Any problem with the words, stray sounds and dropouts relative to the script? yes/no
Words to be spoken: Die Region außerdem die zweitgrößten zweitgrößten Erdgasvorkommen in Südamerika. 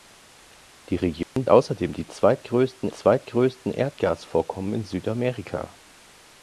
yes